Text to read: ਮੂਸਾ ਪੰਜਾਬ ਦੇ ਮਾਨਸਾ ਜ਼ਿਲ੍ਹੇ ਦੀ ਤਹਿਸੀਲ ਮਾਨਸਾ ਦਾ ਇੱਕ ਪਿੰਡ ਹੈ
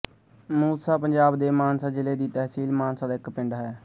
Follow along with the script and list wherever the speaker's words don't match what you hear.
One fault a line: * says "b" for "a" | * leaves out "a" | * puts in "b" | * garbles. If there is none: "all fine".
all fine